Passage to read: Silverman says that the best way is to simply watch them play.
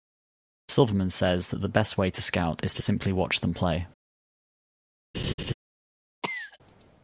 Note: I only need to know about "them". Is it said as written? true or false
true